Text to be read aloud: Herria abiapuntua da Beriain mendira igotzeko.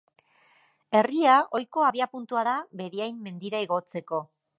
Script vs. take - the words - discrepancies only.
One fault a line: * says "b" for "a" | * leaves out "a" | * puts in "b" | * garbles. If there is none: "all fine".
* puts in "ohiko"